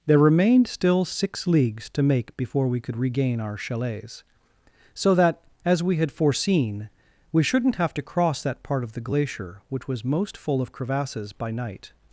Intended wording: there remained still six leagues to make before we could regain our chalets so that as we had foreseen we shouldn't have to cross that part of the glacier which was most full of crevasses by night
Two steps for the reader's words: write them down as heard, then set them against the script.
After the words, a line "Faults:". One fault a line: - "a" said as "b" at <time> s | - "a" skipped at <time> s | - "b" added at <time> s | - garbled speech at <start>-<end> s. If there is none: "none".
there remained still six leagues to make before we could regain our chalets so that as we had foreseen we shouldn't have to cross that part of the glacier which was most full of crevasses by night
Faults:
none